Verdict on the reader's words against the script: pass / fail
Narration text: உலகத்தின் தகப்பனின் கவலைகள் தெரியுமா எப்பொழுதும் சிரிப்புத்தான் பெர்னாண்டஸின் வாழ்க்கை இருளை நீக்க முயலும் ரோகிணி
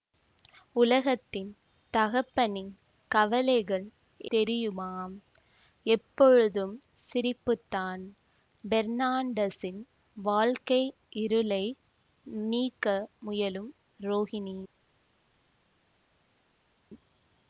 pass